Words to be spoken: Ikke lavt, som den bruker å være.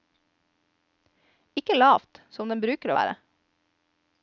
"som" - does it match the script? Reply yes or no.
yes